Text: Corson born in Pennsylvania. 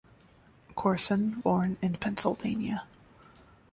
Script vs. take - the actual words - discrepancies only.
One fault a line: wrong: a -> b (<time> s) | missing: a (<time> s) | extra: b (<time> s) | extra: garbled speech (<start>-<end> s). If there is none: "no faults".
no faults